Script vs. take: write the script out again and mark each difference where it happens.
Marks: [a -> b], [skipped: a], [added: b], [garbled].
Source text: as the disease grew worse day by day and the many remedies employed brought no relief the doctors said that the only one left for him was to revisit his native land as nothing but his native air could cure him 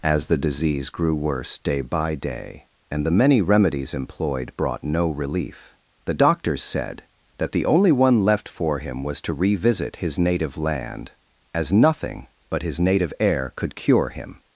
as the disease grew worse day by day and the many remedies employed brought no relief the doctors said that the only one left for him was to revisit his native land as nothing but his native air could cure him